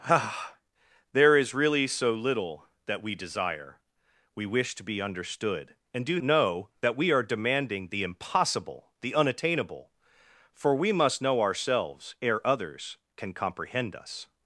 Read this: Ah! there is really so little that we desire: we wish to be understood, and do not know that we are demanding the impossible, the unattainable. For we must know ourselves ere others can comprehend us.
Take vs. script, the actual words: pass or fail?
fail